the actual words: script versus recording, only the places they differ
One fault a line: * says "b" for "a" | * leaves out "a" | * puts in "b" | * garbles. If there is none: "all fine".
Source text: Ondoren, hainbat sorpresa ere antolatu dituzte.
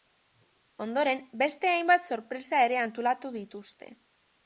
* puts in "beste"